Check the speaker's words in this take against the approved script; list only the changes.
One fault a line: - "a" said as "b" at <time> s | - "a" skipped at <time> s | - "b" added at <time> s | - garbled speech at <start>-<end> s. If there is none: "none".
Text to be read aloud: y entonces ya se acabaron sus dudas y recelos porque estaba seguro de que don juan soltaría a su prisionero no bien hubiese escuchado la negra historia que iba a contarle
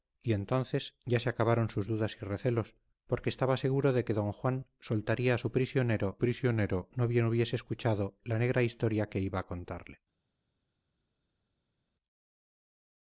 - "prisionero" added at 6.2 s